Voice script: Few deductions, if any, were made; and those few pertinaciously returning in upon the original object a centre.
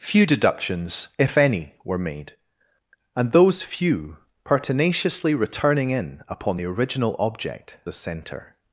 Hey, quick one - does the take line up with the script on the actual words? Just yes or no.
yes